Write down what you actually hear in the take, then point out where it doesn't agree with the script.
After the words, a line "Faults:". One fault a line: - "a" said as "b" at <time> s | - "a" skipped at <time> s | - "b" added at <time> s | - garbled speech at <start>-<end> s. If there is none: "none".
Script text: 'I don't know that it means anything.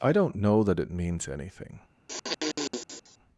'I don't know that it means anything.
Faults:
none